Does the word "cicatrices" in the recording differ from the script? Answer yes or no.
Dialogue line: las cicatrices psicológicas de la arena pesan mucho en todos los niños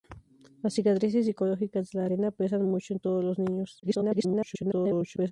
no